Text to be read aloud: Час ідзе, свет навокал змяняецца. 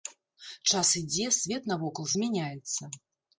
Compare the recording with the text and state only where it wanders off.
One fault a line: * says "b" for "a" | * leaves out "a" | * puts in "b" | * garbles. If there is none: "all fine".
all fine